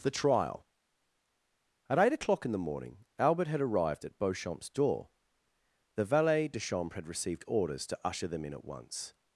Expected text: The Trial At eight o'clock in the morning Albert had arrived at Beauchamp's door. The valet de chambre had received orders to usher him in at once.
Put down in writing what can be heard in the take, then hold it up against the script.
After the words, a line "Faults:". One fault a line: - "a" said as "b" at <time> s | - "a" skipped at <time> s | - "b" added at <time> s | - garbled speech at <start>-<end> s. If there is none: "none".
The Trial At eight o'clock in the morning Albert had arrived at Beauchamp's door. The valet de chambre had received orders to usher them in at once.
Faults:
- "him" said as "them" at 8.3 s